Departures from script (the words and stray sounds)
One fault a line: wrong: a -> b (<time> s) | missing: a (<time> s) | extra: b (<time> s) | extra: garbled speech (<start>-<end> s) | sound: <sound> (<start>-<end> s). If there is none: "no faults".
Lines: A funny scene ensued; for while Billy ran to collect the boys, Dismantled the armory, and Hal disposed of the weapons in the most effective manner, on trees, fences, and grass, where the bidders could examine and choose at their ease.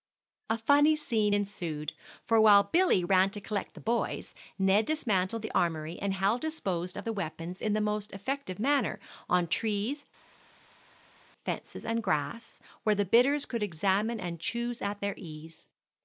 extra: Ned (4.6 s)